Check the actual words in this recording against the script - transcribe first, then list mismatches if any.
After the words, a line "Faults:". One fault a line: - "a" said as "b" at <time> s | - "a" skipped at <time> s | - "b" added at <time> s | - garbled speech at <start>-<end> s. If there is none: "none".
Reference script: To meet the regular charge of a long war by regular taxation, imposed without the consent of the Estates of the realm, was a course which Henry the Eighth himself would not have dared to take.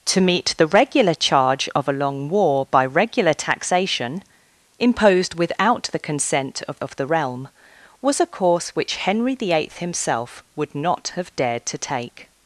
To meet the regular charge of a long war by regular taxation, imposed without the consent of of the realm, was a course which Henry the Eighth himself would not have dared to take.
Faults:
- "the Estates" skipped at 6.8 s